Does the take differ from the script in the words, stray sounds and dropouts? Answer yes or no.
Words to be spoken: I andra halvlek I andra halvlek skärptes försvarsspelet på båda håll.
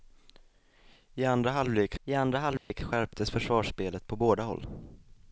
yes